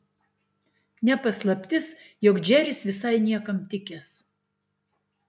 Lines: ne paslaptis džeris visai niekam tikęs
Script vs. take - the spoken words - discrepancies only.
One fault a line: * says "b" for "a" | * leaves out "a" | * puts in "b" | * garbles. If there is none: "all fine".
* puts in "jog"